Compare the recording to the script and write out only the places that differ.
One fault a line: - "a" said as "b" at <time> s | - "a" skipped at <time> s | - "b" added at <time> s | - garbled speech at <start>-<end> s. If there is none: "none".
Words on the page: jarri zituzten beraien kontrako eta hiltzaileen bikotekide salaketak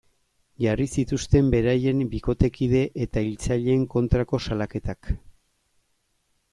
- "kontrako" said as "bikotekide" at 2.1 s
- "bikotekide" said as "kontrako" at 4.0 s